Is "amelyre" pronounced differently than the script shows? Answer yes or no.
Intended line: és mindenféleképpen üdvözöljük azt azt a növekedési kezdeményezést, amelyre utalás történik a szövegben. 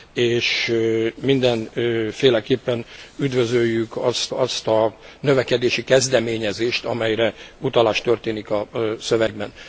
no